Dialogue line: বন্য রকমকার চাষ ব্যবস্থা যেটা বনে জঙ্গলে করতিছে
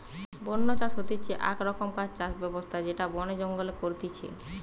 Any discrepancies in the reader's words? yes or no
yes